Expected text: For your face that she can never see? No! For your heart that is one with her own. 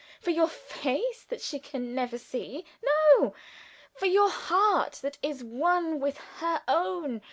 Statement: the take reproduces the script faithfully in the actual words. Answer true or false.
true